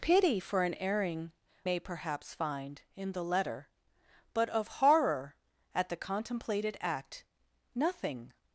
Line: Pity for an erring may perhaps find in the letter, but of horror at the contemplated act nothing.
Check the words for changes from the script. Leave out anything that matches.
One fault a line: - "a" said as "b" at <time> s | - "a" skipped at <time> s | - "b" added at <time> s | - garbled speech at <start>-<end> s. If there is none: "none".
none